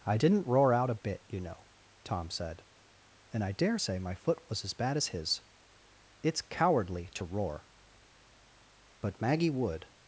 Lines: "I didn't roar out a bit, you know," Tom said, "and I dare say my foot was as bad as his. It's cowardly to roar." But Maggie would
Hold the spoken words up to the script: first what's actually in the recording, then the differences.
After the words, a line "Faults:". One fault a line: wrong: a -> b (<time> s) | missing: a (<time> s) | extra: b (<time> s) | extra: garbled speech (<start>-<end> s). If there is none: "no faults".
"I didn't roar out a bit, you know," Tom said, "and I dare say my foot was as bad as his. It's cowardly to roar." But Maggie would
Faults:
no faults